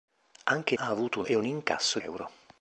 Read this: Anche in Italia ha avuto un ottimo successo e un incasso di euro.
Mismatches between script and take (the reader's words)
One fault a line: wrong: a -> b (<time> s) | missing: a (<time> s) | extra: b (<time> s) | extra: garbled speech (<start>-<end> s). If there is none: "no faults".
missing: Italia (0.8 s)
missing: ottimo successo (1.3 s)
missing: di (2.0 s)